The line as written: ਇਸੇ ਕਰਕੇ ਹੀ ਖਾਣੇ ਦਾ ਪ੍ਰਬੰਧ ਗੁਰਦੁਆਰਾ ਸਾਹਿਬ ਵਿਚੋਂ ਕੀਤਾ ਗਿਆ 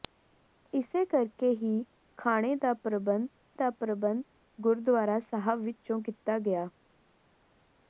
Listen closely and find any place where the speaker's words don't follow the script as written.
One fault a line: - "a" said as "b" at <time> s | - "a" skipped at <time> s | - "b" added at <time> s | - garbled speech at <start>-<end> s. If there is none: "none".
- "ਦਾ ਪ੍ਰਬੰਧ" added at 3.5 s